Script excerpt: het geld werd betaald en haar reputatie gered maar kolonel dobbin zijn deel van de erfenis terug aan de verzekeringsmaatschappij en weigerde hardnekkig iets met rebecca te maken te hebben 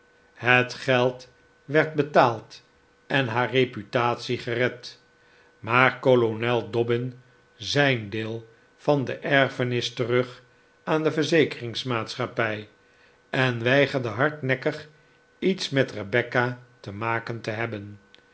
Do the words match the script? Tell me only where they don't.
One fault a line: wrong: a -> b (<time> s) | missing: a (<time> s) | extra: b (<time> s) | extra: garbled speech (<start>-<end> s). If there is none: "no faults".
no faults